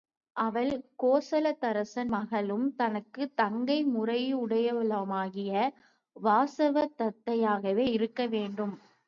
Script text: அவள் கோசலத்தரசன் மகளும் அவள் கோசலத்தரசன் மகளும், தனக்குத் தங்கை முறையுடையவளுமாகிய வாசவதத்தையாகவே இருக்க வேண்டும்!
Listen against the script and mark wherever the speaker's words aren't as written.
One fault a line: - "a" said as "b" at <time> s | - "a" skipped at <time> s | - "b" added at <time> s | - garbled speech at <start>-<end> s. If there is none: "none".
- "அவள் கோசலத்தரசன் மகளும்" skipped at 2.6 s